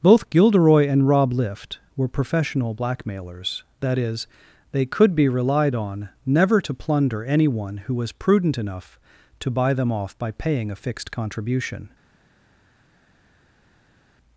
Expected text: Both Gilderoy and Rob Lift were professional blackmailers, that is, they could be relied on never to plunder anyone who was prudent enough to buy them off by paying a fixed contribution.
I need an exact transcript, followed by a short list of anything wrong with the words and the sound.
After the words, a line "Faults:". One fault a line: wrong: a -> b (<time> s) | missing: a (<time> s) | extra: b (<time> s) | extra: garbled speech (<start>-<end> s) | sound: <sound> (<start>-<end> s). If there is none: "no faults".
Both Gilderoy and Rob Lift were professional blackmailers, that is, they could be relied on never to plunder anyone who was prudent enough to buy them off by paying a fixed contribution.
Faults:
no faults